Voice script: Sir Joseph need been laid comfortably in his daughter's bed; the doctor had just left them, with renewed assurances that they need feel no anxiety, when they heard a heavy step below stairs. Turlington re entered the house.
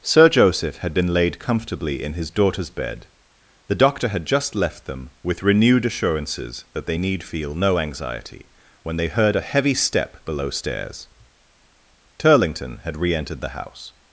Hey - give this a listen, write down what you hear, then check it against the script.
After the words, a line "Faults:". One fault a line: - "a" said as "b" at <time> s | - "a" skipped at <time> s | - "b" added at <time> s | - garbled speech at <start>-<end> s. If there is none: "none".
Sir Joseph had been laid comfortably in his daughter's bed; the doctor had just left them, with renewed assurances that they need feel no anxiety, when they heard a heavy step below stairs. Turlington had re entered the house.
Faults:
- "need" said as "had" at 0.8 s
- "had" added at 12.8 s